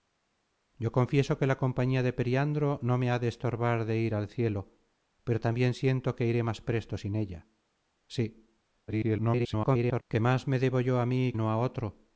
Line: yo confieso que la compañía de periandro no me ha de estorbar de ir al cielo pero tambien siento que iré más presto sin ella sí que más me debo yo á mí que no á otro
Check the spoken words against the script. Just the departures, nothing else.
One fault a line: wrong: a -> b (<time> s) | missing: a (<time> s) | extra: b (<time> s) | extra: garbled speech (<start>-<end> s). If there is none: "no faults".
extra: garbled speech (8.9-10.0 s)
missing: que (11.3 s)